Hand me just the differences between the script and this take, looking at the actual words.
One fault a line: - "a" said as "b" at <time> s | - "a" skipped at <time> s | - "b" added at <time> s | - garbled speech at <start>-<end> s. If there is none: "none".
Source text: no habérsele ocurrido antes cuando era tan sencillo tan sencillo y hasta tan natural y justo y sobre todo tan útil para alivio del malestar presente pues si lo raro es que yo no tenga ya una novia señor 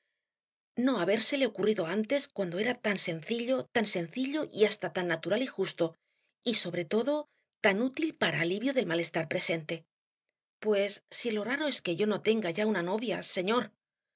none